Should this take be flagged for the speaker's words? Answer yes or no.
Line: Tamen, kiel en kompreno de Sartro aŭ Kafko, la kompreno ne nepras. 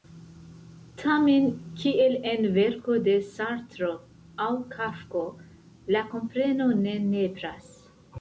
yes